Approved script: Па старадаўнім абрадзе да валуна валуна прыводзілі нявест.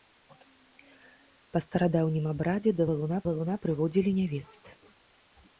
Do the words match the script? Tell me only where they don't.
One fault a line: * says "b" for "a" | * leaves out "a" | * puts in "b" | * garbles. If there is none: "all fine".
all fine